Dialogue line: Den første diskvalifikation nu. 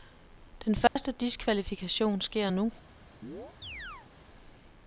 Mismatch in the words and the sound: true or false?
true